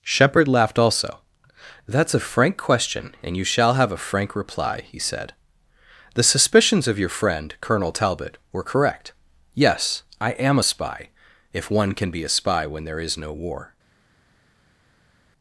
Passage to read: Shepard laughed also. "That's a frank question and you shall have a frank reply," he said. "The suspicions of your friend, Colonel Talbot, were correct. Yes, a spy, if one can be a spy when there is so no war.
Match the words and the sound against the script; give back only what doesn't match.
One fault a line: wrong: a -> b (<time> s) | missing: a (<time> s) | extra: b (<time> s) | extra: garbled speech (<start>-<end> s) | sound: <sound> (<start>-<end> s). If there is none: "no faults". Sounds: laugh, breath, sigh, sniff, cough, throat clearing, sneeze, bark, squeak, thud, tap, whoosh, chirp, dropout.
extra: I am (10.2 s)
missing: so (13.2 s)